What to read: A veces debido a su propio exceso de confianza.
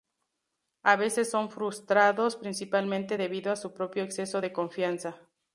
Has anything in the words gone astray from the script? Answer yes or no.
yes